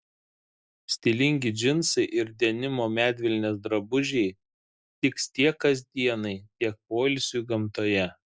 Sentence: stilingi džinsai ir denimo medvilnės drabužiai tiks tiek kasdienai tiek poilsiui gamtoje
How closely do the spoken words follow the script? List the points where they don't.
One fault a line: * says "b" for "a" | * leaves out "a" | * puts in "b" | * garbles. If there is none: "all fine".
all fine